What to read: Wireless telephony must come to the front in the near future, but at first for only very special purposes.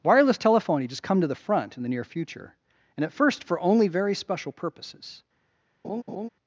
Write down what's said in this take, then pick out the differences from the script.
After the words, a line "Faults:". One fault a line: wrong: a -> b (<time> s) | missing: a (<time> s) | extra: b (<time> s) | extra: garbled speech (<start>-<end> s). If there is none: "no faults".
Wireless telephony just come to the front in the near future, and at first for only very special purposes.
Faults:
wrong: must -> just (0.9 s)
wrong: but -> and (3.0 s)